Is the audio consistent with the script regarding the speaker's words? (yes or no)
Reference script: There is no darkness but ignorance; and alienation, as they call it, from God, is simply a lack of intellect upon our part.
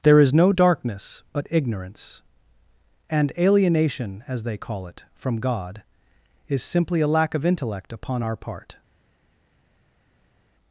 yes